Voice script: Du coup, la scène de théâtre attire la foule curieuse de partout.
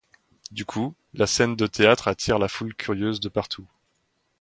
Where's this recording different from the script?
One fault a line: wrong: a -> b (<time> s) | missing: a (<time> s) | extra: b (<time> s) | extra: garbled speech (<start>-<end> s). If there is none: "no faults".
no faults